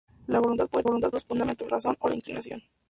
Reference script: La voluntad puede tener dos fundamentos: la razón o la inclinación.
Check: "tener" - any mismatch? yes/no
yes